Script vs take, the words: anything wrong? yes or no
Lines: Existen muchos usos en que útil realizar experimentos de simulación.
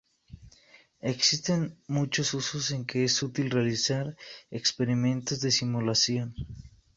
yes